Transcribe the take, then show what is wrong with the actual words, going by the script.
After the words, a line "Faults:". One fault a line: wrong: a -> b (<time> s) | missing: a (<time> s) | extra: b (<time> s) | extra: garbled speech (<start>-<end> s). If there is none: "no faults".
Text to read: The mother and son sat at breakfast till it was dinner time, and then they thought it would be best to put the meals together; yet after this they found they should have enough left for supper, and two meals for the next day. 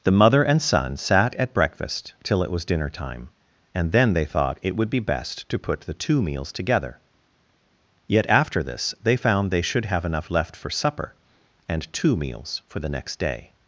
The mother and son sat at breakfast till it was dinner time, and then they thought it would be best to put the two meals together; yet after this they found they should have enough left for supper, and two meals for the next day.
Faults:
extra: two (5.9 s)